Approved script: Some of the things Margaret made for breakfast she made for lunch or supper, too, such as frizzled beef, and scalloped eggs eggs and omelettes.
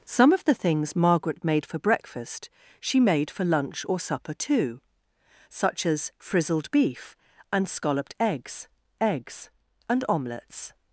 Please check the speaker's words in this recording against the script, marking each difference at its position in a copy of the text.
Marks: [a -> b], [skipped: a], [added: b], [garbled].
Some of the things Margaret made for breakfast she made for lunch or supper, too, such as frizzled beef, and scalloped eggs eggs and omelettes.